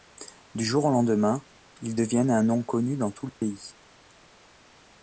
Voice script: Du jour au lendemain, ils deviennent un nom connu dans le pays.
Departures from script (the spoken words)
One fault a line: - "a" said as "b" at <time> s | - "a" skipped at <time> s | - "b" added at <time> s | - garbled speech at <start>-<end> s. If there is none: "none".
- "tout" added at 3.1 s